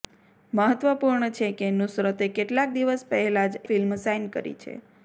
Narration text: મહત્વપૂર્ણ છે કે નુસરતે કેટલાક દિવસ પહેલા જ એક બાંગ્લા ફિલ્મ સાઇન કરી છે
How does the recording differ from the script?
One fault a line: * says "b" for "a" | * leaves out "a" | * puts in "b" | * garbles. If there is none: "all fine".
* leaves out "એક બાંગ્લા"